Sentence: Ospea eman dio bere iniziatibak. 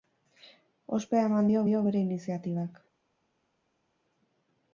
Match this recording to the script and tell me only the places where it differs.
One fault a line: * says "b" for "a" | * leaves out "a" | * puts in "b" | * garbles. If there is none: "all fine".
* puts in "dio"